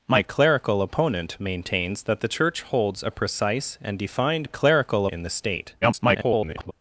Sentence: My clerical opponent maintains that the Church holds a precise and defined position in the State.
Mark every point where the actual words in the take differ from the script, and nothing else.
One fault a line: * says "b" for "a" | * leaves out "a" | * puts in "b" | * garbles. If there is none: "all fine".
* says "clerical" for "position"
* garbles